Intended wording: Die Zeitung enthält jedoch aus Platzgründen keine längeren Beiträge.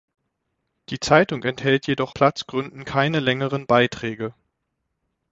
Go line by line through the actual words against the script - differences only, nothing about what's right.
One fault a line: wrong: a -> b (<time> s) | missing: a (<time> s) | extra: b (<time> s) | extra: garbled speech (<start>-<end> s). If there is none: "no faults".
missing: aus (2.1 s)